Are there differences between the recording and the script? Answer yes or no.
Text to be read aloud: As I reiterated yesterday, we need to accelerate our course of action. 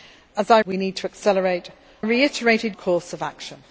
yes